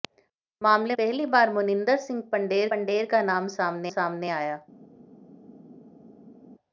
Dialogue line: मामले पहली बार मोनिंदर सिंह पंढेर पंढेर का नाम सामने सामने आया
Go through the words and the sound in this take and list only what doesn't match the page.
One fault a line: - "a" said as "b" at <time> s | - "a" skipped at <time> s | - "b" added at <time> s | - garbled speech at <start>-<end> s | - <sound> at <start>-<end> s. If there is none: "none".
none